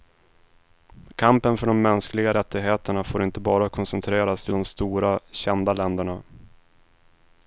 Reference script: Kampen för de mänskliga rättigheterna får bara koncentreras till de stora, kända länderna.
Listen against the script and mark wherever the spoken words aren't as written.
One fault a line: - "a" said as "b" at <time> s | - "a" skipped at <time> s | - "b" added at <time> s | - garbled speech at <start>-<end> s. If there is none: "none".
- "inte" added at 3.2 s